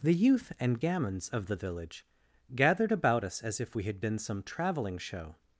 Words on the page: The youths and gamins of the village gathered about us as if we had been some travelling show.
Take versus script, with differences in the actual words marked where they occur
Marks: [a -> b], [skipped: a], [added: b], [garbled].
The [youths -> youth] and gamins of the village gathered about us as if we had been some travelling show.